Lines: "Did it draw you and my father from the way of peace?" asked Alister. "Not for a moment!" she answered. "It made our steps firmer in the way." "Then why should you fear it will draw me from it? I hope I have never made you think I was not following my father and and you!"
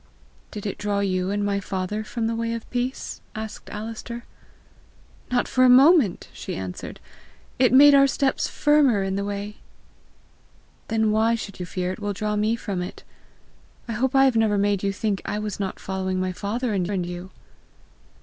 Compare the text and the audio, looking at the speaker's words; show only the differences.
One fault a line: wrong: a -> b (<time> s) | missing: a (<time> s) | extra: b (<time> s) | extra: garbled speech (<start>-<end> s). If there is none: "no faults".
no faults